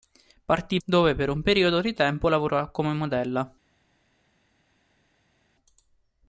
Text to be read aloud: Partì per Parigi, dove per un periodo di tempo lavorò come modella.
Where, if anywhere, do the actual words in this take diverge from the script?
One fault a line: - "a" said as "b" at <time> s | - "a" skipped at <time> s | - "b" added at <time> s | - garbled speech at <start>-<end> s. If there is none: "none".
- "per Parigi" skipped at 0.8 s